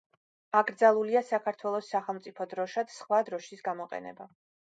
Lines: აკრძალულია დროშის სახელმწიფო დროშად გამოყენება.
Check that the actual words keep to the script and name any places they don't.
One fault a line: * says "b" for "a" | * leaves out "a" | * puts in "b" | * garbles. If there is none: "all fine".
* says "საქართველოს" for "დროშის"
* puts in "სხვა დროშის"